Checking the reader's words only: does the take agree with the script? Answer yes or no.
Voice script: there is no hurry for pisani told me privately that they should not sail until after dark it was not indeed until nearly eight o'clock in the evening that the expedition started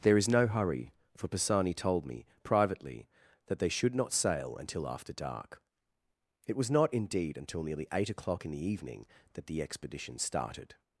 yes